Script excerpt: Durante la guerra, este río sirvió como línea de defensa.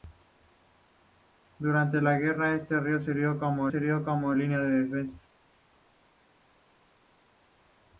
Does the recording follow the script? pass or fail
fail